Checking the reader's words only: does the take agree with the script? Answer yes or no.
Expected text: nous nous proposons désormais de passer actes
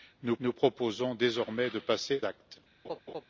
yes